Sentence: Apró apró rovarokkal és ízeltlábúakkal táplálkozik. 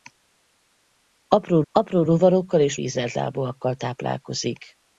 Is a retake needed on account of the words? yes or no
no